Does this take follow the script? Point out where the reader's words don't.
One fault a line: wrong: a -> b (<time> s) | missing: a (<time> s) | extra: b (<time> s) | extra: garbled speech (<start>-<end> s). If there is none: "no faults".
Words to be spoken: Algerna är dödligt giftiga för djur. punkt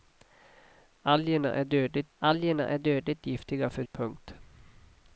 extra: algerna är dödligt (2.2 s)
missing: djur (3.8 s)